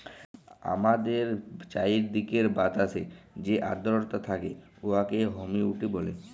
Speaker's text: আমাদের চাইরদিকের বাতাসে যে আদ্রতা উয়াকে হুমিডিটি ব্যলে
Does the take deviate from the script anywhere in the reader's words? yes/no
yes